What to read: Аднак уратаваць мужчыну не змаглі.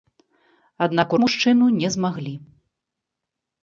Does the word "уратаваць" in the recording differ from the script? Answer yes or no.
yes